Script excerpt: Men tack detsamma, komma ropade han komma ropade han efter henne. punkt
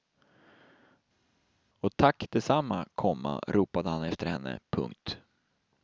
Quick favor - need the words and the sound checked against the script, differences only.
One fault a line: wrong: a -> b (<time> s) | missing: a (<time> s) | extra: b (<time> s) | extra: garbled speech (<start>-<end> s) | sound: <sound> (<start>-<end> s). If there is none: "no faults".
wrong: Men -> Och (1.8 s)
missing: komma ropade han (4.0 s)